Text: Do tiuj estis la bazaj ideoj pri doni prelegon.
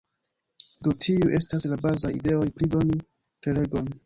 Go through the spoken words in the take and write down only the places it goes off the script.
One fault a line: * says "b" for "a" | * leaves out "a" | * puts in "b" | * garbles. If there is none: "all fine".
* says "estas" for "estis"